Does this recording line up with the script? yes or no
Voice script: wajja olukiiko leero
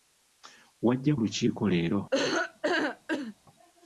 yes